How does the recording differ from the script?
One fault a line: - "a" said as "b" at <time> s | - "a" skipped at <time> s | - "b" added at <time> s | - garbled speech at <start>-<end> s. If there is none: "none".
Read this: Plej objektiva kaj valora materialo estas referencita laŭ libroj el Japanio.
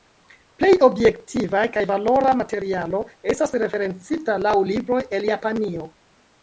none